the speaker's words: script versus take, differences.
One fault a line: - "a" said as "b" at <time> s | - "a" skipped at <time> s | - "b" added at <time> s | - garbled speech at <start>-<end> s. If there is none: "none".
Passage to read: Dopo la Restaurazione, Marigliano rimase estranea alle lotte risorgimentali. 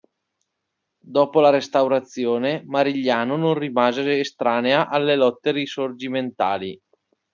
- "non" added at 3.4 s